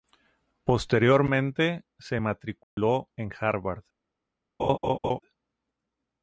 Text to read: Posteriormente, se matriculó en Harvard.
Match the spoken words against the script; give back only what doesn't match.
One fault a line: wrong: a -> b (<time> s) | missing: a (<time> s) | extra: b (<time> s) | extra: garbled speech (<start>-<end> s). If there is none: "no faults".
no faults